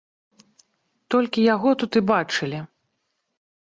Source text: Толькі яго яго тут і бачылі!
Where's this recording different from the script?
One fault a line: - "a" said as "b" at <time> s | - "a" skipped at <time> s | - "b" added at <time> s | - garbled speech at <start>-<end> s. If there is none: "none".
- "яго" skipped at 1.7 s